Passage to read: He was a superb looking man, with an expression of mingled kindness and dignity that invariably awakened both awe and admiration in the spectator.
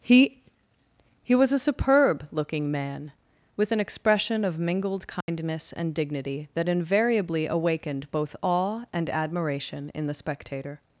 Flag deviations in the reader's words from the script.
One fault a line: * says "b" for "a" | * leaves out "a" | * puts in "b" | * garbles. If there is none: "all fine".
* puts in "he"